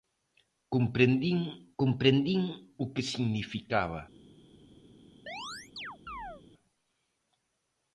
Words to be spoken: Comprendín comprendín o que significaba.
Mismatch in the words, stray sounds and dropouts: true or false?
true